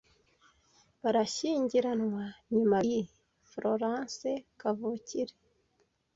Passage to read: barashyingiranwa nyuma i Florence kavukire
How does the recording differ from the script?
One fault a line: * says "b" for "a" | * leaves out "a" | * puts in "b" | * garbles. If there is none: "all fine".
all fine